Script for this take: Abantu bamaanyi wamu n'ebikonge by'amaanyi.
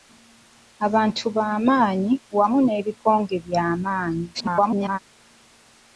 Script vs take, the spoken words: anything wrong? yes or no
yes